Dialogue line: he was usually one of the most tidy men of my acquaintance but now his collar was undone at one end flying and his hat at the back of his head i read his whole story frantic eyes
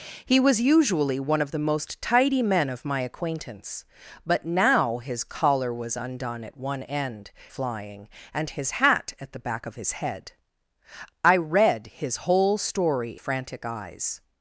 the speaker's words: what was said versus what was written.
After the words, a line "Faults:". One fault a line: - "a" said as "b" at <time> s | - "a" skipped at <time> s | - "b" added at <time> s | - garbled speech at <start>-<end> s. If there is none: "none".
he was usually one of the most tidy men of my acquaintance but now his collar was undone at one end flying and his hat at the back of his head i read his whole story frantic eyes
Faults:
none